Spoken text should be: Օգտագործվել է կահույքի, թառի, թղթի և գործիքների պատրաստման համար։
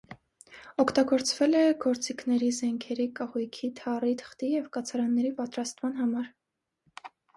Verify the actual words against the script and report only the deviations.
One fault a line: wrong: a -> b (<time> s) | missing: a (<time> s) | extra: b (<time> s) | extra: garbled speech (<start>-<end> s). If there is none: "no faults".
extra: գործիքների զենքերի (1.8 s)
wrong: գործիքների -> կացարանների (4.8 s)